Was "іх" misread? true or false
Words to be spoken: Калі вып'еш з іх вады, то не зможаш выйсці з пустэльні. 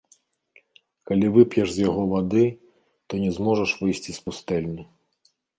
true